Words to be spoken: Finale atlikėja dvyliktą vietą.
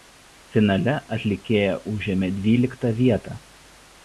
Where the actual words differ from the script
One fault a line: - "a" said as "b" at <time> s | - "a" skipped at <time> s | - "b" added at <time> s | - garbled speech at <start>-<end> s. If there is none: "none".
- "užėmė" added at 1.9 s